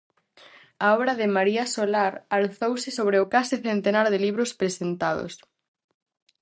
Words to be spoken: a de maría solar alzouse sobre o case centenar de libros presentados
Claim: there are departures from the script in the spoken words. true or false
true